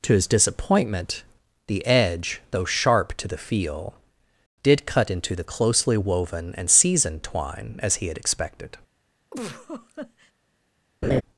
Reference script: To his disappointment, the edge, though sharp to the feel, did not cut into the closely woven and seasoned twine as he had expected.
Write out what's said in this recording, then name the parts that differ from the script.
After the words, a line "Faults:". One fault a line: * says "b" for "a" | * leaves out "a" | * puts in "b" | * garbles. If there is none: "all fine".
To his disappointment, the edge, though sharp to the feel, did cut into the closely woven and seasoned twine as he had expected.
Faults:
* leaves out "not"